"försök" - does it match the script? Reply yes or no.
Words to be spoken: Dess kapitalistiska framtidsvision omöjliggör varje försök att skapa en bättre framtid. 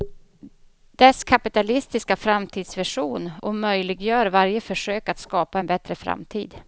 yes